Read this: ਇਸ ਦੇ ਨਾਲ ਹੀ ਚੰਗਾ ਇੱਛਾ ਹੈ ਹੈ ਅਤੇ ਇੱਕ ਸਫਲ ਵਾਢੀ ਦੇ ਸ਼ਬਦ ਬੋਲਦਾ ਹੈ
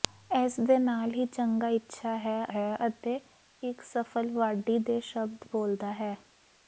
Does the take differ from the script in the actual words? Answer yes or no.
no